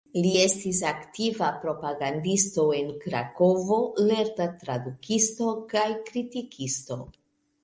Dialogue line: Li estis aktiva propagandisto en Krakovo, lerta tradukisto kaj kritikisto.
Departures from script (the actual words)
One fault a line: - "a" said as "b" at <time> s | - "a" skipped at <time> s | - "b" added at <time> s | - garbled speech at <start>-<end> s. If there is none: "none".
none